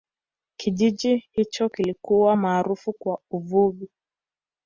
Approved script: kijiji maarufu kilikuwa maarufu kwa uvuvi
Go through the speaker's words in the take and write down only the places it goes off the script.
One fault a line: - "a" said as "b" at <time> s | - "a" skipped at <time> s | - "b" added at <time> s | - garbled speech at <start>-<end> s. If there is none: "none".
- "maarufu" said as "hicho" at 1.3 s